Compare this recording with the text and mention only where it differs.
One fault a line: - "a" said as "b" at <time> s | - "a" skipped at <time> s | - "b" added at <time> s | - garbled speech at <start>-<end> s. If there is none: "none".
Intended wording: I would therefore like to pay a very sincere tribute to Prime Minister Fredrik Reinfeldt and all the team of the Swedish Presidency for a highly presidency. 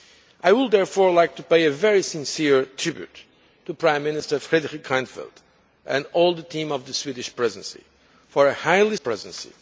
none